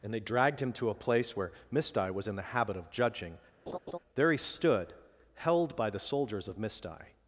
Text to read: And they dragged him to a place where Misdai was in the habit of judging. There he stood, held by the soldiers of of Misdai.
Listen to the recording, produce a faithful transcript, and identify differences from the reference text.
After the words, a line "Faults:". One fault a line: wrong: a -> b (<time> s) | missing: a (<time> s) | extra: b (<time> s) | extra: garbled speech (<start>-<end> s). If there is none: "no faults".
And they dragged him to a place where Misdai was in the habit of judging. There he stood, held by the soldiers of Misdai.
Faults:
missing: of (6.6 s)